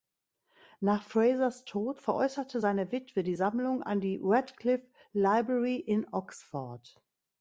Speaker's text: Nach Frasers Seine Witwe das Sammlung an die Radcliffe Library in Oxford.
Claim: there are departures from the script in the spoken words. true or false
true